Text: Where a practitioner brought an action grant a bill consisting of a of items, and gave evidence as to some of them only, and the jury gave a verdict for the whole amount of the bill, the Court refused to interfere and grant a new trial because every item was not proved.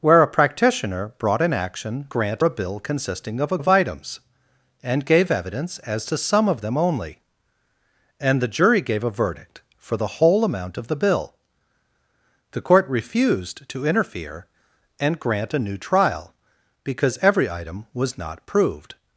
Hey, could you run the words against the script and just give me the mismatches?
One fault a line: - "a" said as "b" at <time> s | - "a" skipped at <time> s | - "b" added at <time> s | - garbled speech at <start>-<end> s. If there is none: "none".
none